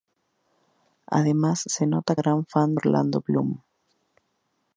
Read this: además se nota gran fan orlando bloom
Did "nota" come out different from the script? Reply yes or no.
no